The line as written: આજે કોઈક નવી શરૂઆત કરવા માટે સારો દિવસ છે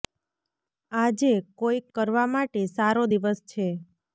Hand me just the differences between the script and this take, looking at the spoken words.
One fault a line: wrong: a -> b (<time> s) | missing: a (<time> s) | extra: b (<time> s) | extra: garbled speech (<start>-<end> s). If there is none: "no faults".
missing: નવી શરૂઆત (1.9 s)